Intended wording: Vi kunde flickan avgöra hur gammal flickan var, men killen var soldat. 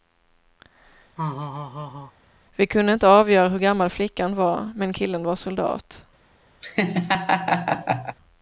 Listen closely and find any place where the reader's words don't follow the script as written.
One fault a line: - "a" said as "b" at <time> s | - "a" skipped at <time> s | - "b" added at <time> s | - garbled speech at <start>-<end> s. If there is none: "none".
- "flickan" said as "inte" at 2.9 s